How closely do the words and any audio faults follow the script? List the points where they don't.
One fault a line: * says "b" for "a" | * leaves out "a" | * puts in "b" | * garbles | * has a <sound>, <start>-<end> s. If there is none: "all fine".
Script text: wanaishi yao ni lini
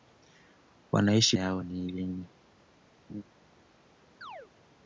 * has a laugh, 3.1-3.2 s
* has a chirp, 4.2-4.5 s